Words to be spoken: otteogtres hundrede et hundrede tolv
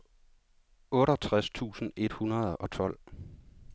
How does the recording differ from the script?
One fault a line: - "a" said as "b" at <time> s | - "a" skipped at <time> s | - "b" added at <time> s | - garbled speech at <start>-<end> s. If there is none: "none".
- "hundrede" said as "tusind" at 1.5 s
- "og" added at 2.5 s